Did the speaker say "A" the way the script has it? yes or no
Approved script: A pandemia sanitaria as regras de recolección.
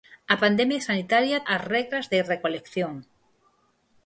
yes